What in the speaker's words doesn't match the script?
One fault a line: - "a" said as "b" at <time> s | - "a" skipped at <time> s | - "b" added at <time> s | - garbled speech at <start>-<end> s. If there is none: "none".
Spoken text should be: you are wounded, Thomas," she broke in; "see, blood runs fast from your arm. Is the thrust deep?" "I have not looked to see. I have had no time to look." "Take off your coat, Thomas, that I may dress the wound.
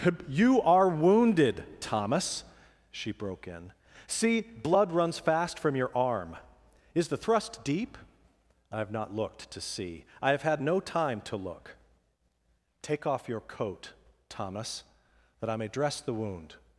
none